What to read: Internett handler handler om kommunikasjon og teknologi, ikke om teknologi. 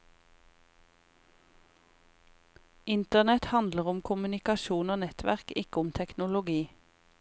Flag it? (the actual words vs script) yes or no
yes